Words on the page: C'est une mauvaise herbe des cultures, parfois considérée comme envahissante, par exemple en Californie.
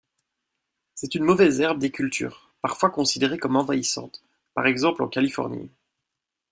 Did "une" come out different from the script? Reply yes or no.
no